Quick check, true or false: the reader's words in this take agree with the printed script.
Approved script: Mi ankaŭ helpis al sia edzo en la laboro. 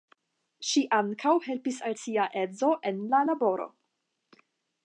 false